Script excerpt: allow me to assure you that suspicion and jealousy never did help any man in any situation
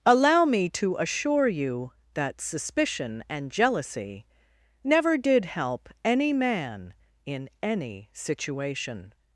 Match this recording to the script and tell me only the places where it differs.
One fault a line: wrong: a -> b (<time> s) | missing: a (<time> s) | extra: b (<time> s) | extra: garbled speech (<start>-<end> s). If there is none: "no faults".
no faults